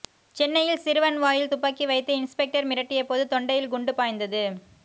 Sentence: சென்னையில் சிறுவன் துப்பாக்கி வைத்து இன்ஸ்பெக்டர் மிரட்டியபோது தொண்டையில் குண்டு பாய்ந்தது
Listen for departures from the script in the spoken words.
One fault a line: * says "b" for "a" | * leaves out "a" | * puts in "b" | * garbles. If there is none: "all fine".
* puts in "வாயில்"